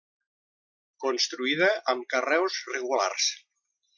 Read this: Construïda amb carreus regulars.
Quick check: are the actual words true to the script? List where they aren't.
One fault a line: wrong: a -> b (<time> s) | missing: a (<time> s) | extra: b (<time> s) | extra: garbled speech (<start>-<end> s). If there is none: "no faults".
no faults